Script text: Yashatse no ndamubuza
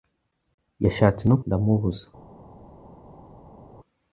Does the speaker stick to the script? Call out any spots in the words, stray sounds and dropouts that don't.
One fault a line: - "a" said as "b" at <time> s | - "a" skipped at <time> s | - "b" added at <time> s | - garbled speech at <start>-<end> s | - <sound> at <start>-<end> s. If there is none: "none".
none